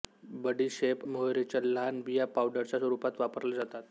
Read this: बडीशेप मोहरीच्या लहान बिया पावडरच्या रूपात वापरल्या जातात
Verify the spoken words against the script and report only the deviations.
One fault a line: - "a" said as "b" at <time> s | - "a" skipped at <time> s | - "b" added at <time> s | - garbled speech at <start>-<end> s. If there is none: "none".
none